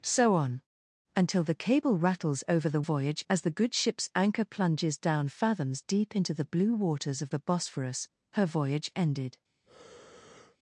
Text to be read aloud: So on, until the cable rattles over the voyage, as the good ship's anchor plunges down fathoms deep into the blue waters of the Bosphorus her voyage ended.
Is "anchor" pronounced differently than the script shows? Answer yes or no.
no